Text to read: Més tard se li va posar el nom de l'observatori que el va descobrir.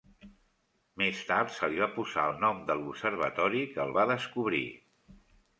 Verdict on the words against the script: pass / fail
pass